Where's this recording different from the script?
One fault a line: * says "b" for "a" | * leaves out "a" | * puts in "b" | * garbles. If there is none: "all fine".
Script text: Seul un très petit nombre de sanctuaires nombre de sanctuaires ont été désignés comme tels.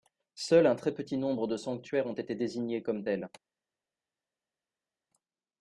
* leaves out "nombre de sanctuaires"